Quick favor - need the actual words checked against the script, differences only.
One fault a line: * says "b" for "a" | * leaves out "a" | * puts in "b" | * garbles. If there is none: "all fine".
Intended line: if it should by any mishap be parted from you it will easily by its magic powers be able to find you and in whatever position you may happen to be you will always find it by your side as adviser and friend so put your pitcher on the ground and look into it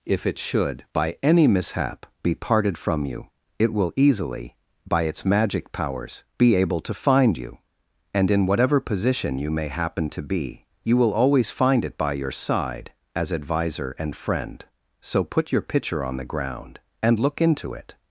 all fine